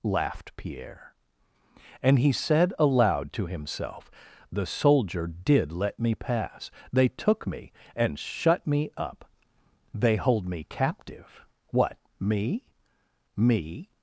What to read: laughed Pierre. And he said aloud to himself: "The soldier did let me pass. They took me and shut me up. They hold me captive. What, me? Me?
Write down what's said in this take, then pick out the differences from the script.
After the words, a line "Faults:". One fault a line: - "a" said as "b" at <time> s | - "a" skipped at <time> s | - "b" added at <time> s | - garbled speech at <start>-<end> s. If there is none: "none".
laughed Pierre. And he said aloud to himself: "The soldier did let me pass. They took me and shut me up. They hold me captive. What, me? Me?
Faults:
none